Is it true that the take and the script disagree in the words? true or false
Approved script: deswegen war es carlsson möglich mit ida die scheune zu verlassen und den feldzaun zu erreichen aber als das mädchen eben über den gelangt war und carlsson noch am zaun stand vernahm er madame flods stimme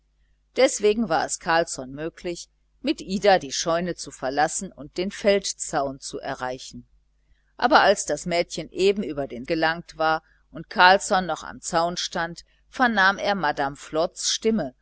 false